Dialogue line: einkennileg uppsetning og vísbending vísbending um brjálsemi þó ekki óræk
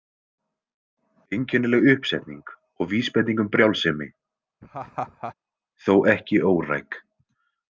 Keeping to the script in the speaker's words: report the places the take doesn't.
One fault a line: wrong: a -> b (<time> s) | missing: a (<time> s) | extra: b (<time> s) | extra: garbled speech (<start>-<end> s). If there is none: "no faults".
missing: vísbending (3.4 s)